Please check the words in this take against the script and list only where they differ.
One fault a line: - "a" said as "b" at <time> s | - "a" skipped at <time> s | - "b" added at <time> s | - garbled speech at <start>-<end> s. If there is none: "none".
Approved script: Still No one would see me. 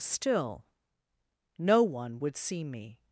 none